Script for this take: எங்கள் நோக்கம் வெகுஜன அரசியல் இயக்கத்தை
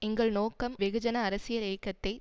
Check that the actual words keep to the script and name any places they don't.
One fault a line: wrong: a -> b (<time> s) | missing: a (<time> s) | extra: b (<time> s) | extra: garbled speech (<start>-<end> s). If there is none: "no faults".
no faults